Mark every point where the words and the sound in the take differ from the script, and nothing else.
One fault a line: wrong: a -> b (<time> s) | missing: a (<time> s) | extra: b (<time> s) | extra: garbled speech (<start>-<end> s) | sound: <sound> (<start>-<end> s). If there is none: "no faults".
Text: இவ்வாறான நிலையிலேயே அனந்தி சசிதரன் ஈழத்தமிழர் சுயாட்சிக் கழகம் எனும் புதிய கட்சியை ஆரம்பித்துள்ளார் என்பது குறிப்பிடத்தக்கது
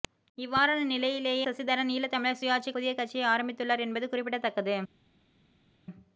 missing: அனந்தி (1.4 s)
missing: கழகம் எனும் (2.8 s)